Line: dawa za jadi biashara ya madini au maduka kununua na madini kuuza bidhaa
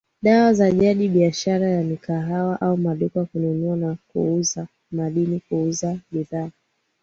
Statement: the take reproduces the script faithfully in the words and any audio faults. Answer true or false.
false